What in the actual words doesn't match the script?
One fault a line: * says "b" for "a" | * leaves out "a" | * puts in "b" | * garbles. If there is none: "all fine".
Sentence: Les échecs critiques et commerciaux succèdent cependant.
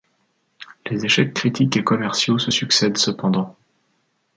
* puts in "se"